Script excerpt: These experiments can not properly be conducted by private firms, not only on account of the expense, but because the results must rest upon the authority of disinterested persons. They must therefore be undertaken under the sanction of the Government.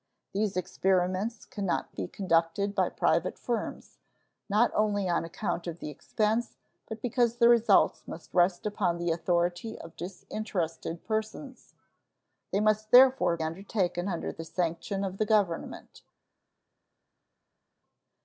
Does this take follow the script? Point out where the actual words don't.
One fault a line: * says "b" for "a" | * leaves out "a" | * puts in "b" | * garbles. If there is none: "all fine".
* leaves out "properly"
* leaves out "be"